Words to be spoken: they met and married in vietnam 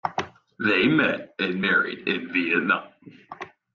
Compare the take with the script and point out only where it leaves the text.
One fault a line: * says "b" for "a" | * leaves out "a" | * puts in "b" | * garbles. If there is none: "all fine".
all fine